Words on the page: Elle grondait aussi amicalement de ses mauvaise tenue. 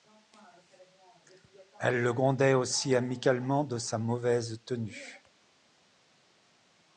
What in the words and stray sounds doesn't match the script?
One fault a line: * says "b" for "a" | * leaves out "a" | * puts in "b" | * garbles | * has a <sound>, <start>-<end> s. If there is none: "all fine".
* puts in "le"
* says "sa" for "ses"